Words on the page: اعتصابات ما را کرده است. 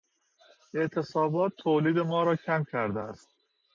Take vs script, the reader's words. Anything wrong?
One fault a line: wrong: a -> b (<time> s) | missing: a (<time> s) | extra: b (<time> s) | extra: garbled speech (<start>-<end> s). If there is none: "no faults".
extra: تولید (1.6 s)
extra: کم (2.4 s)